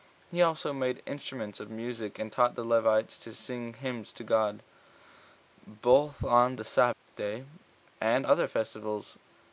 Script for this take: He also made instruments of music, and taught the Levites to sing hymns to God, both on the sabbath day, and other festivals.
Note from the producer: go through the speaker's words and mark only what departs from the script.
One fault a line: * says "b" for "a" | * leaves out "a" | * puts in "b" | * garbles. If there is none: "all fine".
all fine